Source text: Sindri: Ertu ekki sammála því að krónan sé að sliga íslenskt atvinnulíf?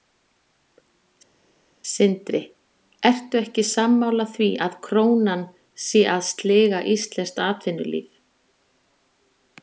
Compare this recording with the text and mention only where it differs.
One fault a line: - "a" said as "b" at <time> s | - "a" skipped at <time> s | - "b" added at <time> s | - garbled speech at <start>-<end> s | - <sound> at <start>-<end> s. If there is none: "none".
none